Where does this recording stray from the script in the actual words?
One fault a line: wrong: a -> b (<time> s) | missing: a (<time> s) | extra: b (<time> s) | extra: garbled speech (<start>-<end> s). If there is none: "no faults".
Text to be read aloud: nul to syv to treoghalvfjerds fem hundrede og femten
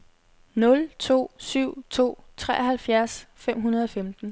no faults